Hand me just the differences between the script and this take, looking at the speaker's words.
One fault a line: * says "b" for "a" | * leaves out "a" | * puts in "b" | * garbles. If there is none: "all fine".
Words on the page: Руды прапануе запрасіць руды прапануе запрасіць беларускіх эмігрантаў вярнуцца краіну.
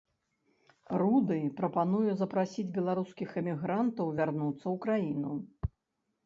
* leaves out "руды прапануе запрасіць"
* puts in "ў"